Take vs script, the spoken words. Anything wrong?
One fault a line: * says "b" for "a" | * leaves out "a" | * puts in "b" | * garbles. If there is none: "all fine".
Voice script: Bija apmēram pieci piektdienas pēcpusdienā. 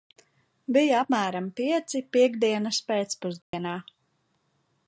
all fine